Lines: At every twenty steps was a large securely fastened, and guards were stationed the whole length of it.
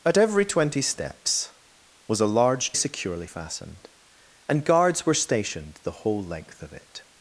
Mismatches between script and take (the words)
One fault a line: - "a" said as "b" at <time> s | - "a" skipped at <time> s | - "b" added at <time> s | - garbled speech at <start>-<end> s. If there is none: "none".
none